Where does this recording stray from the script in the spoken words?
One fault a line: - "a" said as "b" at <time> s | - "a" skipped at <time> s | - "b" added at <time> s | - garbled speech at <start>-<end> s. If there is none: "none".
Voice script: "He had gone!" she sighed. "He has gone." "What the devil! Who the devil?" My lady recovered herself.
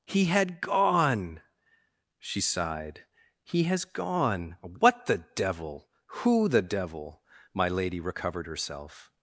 none